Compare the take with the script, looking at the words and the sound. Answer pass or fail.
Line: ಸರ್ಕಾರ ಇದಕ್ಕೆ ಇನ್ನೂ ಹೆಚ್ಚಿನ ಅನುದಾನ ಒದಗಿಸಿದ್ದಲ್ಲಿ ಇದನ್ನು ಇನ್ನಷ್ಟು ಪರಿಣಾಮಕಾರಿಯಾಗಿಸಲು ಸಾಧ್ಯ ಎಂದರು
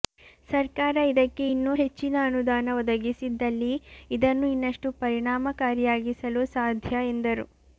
pass